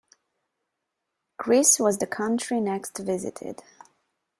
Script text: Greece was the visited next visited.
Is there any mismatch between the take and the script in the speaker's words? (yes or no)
yes